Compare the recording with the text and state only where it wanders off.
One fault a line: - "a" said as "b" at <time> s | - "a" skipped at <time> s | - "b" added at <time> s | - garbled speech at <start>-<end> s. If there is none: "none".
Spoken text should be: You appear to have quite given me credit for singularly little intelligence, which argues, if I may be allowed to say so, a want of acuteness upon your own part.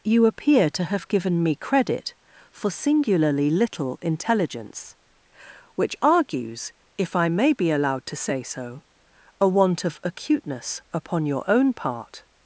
- "quite" skipped at 1.1 s